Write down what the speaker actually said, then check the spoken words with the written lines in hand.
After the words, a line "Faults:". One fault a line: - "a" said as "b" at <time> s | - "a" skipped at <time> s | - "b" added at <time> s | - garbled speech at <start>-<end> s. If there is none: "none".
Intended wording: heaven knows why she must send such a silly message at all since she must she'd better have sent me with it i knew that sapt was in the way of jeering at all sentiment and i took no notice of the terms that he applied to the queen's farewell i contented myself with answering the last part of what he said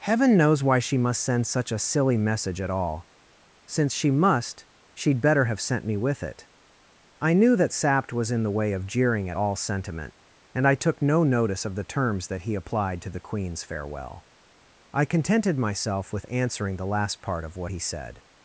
heaven knows why she must send such a silly message at all since she must she'd better have sent me with it i knew that sapt was in the way of jeering at all sentiment and i took no notice of the terms that he applied to the queen's farewell i contented myself with answering the last part of what he said
Faults:
none